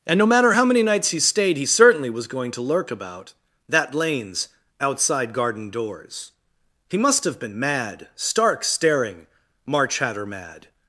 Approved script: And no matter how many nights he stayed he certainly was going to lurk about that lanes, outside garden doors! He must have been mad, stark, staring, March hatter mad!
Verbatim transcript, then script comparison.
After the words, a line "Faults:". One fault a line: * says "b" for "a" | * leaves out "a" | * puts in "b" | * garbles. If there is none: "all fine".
And no matter how many nights he stayed he certainly was going to lurk about that lanes, outside garden doors! He must have been mad, stark, staring, March hatter mad!
Faults:
all fine